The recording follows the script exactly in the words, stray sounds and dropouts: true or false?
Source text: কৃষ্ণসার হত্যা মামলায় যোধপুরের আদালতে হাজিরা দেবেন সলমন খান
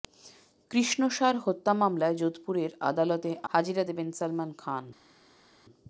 true